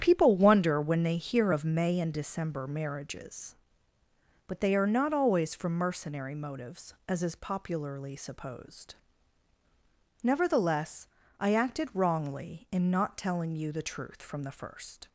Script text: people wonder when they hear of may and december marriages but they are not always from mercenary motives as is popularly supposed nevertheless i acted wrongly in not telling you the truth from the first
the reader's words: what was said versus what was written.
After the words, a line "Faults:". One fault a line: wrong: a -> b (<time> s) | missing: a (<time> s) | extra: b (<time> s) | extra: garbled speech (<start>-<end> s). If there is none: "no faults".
people wonder when they hear of may and december marriages but they are not always from mercenary motives as is popularly supposed nevertheless i acted wrongly in not telling you the truth from the first
Faults:
no faults